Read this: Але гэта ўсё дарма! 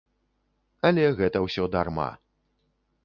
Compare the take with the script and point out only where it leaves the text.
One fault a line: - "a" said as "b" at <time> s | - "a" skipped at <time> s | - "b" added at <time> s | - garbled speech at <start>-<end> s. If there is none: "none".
none